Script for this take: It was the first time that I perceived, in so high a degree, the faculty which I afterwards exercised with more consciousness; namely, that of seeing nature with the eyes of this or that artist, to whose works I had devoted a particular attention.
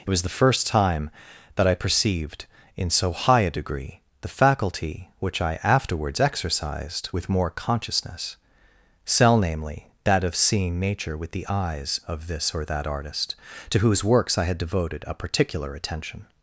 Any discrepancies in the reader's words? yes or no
yes